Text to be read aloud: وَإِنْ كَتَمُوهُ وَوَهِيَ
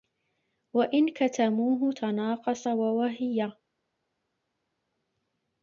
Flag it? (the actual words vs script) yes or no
yes